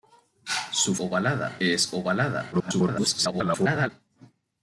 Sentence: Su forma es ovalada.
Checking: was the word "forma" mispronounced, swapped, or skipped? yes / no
yes